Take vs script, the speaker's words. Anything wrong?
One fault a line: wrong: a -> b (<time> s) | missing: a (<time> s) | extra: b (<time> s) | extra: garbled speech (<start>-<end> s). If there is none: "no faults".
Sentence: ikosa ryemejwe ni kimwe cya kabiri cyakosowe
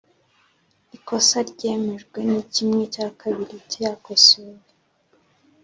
no faults